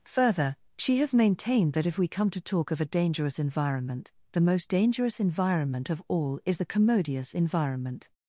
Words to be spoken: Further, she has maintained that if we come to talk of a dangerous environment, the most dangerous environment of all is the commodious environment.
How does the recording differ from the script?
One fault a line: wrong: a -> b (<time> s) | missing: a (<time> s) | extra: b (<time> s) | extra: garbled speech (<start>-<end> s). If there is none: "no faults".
no faults